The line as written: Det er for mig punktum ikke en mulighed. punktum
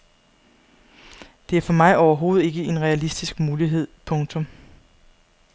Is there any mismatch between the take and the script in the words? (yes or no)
yes